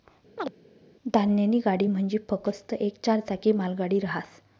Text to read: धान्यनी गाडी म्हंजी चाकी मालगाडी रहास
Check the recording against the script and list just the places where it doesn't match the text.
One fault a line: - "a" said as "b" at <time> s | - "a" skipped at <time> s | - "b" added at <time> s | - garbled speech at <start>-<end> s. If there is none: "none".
- "फकस्त येक चार" added at 2.3 s